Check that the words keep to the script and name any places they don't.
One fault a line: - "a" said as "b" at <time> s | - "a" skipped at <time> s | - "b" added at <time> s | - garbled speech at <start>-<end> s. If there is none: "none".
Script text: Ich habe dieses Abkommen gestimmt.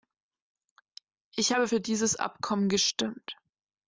- "für" added at 1.6 s